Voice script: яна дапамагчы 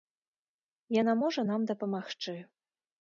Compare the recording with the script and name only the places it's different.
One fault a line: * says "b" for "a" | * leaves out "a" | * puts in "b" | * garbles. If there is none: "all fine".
* puts in "можа нам"